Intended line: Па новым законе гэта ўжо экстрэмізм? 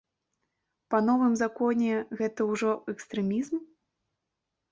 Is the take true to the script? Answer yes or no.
yes